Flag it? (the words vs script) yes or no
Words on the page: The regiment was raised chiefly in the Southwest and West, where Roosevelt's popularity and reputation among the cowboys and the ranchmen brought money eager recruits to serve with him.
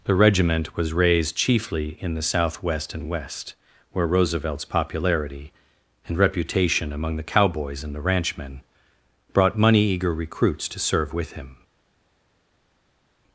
no